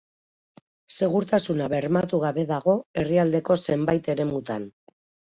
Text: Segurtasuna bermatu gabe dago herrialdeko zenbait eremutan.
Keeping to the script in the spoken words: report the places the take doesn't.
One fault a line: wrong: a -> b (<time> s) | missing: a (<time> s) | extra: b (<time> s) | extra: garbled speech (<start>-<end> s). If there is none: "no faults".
no faults